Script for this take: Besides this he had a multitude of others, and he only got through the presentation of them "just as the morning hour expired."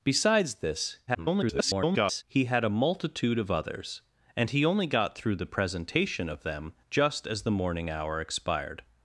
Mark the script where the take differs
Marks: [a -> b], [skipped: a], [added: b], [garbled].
Besides this [garbled] he had a multitude of others, and he only got through the presentation of them "just as the morning hour expired."